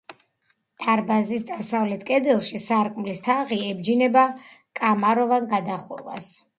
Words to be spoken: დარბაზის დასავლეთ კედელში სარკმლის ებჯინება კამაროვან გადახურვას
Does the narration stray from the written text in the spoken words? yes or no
yes